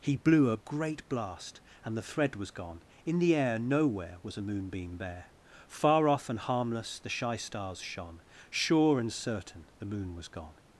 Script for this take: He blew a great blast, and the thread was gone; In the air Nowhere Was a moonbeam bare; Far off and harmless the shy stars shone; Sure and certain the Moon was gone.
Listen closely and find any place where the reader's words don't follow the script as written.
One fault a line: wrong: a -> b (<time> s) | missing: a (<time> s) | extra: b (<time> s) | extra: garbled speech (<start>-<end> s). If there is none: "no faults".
no faults